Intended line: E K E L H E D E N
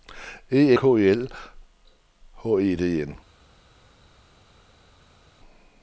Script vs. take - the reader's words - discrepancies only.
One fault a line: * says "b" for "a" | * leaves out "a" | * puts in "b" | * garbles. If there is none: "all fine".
all fine